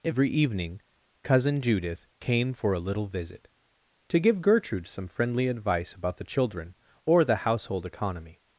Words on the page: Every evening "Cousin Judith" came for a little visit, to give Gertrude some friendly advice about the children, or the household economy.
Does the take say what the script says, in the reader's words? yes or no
yes